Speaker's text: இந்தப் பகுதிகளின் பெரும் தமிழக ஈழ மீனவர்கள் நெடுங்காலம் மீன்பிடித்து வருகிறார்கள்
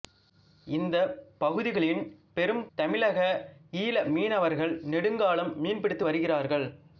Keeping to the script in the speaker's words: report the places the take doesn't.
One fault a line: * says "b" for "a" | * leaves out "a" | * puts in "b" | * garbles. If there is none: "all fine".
all fine